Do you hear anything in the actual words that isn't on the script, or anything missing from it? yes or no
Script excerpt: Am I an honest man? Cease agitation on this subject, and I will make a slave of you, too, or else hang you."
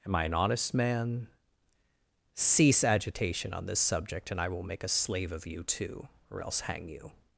no